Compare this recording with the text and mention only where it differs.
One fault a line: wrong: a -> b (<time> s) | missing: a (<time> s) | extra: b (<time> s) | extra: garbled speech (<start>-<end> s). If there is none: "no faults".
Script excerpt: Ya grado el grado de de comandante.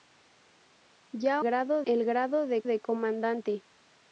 no faults